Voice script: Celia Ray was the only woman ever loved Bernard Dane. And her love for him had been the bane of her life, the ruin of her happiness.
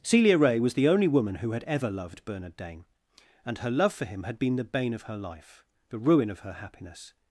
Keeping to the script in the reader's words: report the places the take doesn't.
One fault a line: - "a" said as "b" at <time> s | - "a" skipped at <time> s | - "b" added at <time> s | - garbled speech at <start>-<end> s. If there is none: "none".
- "who had" added at 1.4 s